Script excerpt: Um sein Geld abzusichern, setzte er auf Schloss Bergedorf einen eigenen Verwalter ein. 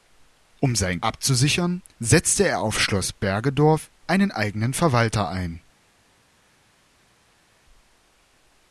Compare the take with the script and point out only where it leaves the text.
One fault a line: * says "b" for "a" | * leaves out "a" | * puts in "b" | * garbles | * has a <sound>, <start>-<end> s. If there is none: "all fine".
* leaves out "Geld"